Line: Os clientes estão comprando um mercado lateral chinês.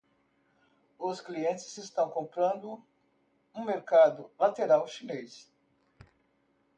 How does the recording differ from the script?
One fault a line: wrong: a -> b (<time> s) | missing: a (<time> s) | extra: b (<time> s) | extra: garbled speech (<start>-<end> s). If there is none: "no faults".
no faults